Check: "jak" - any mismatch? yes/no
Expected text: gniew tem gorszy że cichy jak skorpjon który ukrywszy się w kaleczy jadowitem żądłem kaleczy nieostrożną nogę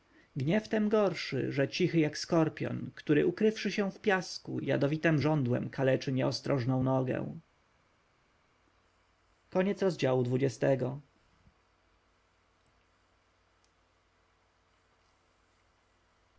no